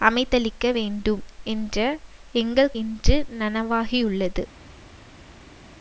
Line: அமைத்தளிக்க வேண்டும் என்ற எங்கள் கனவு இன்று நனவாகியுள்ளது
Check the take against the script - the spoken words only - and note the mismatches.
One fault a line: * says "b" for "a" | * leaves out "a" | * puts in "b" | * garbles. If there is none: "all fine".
* leaves out "கனவு"